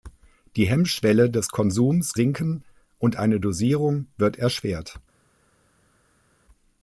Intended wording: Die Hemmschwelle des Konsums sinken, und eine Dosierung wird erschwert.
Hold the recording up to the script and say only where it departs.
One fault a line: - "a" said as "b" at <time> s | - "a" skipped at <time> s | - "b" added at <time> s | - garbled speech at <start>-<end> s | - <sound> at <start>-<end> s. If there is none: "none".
none